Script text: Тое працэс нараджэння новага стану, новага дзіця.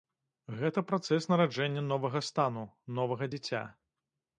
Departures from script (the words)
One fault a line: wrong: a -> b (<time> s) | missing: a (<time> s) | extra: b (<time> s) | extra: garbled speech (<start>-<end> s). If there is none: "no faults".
wrong: Тое -> Гэта (0.6 s)